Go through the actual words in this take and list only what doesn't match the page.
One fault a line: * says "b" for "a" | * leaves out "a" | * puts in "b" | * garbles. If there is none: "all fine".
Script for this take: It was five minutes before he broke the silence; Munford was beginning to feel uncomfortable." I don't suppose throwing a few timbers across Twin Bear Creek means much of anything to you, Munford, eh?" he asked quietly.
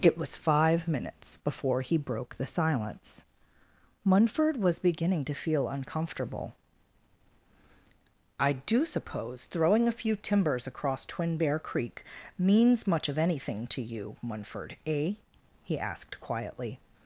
* says "do" for "don't"